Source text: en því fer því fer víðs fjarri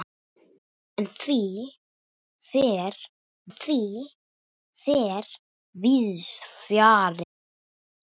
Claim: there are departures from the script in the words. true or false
false